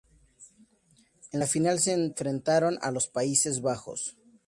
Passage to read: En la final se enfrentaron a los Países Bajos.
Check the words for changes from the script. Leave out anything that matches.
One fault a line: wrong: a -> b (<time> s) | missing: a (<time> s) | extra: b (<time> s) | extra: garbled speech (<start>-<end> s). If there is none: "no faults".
no faults